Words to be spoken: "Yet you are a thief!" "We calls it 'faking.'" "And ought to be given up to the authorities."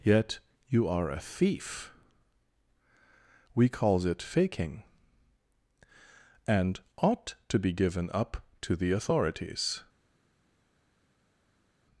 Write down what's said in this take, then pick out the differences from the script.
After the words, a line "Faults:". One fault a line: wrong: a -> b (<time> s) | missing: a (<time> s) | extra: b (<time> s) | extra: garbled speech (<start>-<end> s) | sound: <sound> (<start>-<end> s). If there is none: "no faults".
"Yet you are a thief!" "We calls it 'faking.'" "And ought to be given up to the authorities."
Faults:
no faults